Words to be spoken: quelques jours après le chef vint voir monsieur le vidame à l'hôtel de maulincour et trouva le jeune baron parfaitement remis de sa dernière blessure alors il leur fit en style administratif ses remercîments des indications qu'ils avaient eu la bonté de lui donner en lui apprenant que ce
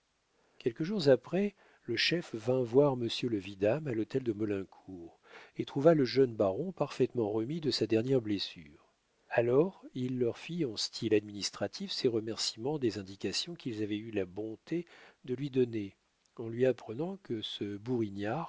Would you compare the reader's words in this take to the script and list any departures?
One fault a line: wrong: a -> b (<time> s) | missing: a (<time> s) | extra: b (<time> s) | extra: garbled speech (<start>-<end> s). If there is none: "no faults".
no faults